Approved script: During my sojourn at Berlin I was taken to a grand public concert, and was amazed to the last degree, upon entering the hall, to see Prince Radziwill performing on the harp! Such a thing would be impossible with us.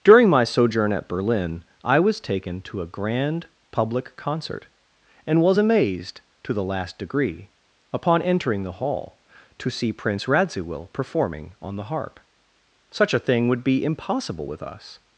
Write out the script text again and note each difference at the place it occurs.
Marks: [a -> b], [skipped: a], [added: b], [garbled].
During my sojourn at Berlin I was taken to a grand public concert, and was amazed to the last degree, upon entering the hall, to see Prince Radziwill performing on the harp! Such a thing would be impossible with us.